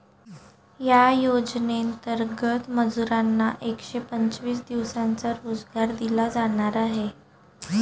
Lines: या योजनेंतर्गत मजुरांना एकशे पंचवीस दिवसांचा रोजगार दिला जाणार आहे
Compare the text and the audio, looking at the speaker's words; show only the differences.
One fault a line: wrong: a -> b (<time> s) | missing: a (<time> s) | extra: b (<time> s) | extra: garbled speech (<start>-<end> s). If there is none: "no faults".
no faults